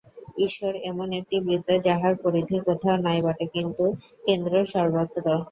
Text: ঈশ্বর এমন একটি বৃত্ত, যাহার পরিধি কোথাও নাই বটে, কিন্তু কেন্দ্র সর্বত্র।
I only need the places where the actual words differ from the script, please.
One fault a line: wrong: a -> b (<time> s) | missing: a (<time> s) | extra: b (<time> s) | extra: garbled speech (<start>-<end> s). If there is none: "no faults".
no faults